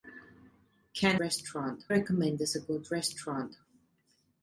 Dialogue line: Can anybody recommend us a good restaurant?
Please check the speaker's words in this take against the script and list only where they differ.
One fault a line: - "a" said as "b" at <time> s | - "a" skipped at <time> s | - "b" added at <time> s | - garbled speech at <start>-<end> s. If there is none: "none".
- "anybody" said as "restaurant" at 1.2 s